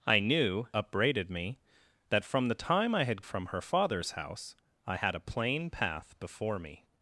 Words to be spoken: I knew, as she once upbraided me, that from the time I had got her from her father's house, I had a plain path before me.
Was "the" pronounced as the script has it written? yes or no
yes